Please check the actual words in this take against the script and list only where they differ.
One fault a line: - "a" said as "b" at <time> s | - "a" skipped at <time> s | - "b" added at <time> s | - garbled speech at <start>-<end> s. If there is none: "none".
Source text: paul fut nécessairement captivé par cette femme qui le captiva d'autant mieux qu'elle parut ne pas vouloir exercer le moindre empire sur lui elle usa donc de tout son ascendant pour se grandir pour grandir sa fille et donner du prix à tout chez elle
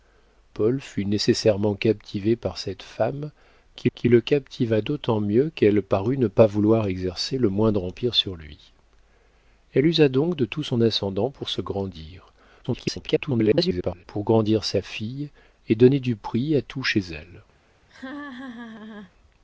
- "qui" added at 3.9 s
- garbled speech at 12.6-14.0 s